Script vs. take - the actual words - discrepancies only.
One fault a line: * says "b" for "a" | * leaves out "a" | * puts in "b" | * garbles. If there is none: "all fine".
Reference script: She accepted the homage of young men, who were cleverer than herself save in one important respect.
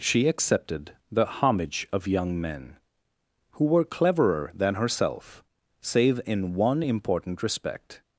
all fine